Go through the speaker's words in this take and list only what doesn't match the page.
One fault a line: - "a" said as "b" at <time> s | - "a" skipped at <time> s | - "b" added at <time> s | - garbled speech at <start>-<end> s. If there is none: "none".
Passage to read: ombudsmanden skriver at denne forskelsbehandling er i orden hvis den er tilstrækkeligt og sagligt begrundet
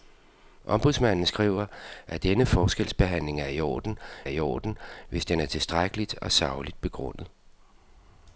- "i orden" added at 4.3 s